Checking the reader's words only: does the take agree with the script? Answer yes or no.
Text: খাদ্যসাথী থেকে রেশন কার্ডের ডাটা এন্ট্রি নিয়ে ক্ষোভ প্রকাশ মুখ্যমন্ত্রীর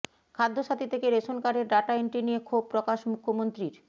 yes